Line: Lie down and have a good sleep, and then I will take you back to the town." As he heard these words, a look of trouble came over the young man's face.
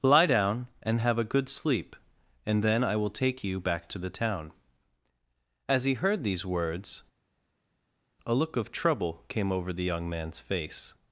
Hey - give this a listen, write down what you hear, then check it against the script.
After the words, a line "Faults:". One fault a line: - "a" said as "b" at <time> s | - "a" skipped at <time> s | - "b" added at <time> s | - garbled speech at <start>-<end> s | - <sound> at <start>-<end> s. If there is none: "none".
Lie down and have a good sleep, and then I will take you back to the town." As he heard these words, a look of trouble came over the young man's face.
Faults:
none